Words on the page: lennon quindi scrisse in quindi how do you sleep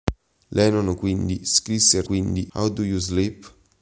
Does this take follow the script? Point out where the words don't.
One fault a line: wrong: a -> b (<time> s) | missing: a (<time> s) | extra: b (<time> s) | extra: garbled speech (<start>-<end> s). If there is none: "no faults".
no faults